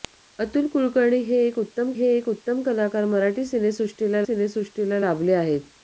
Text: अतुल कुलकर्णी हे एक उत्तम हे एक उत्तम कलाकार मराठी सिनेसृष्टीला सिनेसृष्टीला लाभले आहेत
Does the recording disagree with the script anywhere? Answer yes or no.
no